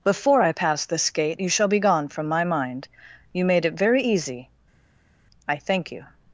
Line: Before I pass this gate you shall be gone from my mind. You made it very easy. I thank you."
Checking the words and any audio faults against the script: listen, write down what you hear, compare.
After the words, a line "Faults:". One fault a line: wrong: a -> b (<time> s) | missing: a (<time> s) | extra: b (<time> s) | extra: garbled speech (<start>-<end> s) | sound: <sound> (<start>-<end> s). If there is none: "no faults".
Before I pass this gate you shall be gone from my mind. You made it very easy. I thank you."
Faults:
no faults